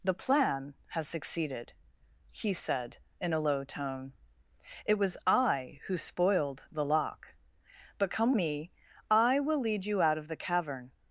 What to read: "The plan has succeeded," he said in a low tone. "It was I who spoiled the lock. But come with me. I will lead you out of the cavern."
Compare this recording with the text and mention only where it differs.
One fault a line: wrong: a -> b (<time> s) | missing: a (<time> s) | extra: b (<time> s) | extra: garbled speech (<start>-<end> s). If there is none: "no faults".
missing: with (8.3 s)